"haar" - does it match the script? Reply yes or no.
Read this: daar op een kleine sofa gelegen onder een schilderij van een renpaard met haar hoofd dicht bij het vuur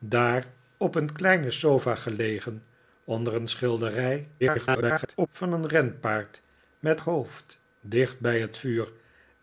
no